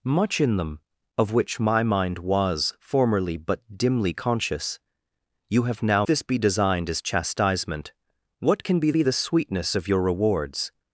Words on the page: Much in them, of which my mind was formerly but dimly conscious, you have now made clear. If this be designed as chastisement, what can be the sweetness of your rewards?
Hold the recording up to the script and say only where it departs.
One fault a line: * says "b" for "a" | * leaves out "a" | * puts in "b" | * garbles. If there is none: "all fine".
* leaves out "made clear If"
* puts in "be"